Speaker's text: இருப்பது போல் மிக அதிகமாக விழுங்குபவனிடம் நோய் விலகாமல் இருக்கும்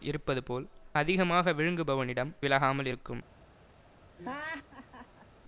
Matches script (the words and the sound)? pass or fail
fail